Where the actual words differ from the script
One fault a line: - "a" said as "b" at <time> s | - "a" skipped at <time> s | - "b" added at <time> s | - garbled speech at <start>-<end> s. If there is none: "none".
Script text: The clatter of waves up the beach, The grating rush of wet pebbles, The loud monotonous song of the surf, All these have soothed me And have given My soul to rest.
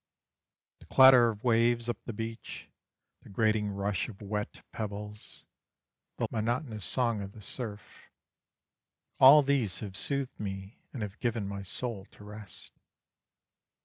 - "loud" skipped at 6.2 s